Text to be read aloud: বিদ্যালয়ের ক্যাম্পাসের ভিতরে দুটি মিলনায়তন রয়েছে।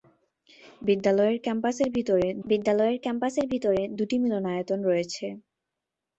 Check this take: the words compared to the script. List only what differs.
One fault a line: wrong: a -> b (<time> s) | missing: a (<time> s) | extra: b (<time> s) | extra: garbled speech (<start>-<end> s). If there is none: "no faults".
extra: বিদ্যালয়ের ক্যাম্পাসের ভিতরে (2.4 s)